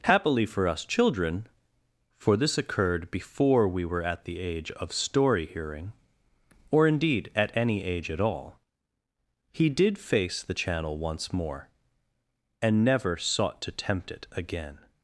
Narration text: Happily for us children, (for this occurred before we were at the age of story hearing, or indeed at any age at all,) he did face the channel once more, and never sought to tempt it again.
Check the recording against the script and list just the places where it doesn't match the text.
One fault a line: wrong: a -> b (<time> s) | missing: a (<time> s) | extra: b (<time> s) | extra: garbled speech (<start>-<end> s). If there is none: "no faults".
no faults